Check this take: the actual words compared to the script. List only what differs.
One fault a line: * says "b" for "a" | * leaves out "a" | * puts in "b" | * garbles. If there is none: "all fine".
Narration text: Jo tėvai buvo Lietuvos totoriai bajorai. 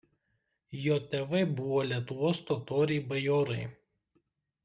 all fine